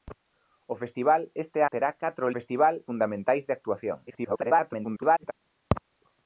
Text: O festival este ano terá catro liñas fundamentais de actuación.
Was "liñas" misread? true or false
true